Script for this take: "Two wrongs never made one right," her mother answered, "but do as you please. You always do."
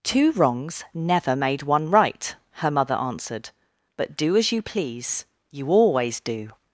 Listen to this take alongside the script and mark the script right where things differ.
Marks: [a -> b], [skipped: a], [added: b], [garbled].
"Two wrongs never made one right," her mother answered, "but do as you please. You always do."